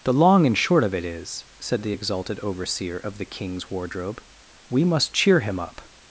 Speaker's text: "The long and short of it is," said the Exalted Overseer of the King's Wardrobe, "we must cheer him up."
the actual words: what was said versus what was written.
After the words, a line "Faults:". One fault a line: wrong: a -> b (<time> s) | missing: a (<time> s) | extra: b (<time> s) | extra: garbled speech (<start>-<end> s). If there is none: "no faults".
"The long and short of it is," said the Exalted Overseer of the King's Wardrobe, "we must cheer him up."
Faults:
no faults